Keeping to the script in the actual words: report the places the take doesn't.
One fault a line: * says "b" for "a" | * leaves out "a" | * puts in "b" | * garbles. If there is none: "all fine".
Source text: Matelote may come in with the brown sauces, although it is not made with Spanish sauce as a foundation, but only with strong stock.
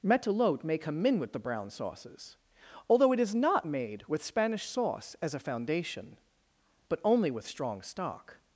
all fine